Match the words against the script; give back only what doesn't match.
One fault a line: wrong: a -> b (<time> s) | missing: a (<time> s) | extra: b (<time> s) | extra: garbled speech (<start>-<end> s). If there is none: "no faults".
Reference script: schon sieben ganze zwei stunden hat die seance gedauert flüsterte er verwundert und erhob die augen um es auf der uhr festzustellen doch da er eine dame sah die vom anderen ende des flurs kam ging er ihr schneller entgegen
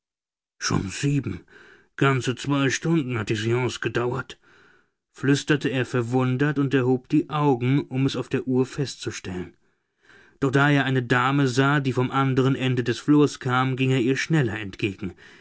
no faults